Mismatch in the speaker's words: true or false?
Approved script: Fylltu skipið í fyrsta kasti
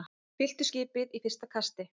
false